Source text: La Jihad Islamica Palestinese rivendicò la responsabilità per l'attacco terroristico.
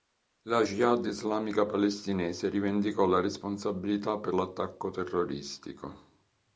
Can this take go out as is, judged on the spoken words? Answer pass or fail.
pass